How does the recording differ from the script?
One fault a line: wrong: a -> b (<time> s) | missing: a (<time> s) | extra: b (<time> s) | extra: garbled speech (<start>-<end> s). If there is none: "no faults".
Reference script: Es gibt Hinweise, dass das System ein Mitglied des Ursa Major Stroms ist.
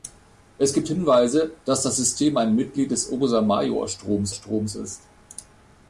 extra: Stroms (4.3 s)